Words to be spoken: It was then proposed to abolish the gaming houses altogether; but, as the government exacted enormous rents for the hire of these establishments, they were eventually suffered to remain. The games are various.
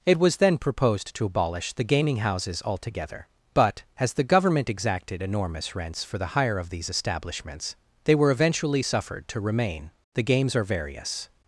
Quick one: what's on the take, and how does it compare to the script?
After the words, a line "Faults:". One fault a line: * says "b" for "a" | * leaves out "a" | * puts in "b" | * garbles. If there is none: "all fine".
It was then proposed to abolish the gaming houses altogether; but, as the government exacted enormous rents for the hire of these establishments, they were eventually suffered to remain. The games are various.
Faults:
all fine